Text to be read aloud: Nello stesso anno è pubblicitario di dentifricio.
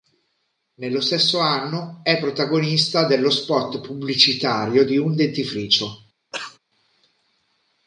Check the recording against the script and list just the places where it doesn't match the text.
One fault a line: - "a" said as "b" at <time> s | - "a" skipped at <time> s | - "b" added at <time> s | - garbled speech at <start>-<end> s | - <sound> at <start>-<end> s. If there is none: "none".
- "protagonista dello spot" added at 2.2 s
- "un" added at 5.0 s
- cough at 6.3-6.6 s